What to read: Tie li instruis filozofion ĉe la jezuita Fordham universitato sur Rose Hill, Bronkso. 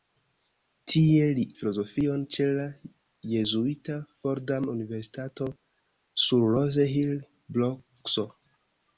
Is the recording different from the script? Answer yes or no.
yes